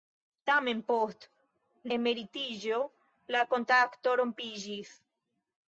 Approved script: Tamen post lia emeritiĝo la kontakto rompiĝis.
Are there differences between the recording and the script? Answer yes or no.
yes